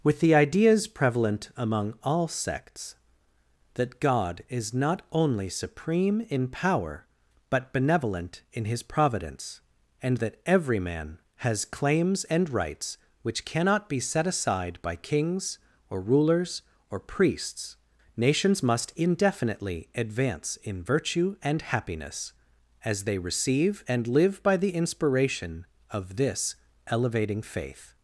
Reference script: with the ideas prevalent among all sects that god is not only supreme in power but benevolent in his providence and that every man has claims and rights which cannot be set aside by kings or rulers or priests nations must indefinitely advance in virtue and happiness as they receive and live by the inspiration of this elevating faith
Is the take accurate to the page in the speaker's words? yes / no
yes